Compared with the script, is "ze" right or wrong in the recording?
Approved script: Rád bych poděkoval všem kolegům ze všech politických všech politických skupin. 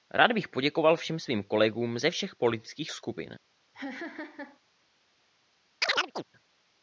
right